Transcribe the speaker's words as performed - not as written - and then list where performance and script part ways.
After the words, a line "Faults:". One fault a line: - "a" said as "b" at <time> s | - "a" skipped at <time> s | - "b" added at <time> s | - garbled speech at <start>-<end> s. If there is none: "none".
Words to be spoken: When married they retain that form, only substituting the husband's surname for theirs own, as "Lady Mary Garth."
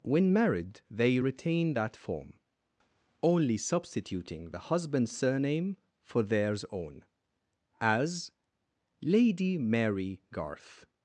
When married they retain that form, only substituting the husband's surname for theirs own, as "Lady Mary Garth."
Faults:
none